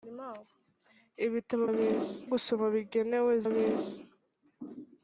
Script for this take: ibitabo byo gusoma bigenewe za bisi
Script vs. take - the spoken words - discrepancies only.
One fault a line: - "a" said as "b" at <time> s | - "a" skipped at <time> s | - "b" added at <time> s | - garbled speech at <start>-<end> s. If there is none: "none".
- "byo" said as "bisi" at 1.8 s
- "za" skipped at 3.3 s